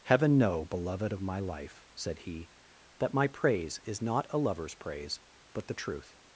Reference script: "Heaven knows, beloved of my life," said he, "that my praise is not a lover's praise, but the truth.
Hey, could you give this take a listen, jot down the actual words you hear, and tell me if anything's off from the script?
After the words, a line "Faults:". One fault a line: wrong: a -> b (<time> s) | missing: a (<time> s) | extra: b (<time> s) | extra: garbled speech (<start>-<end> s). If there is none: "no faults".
"Heaven know, beloved of my life," said he, "that my praise is not a lover's praise, but the truth.
Faults:
wrong: knows -> know (0.4 s)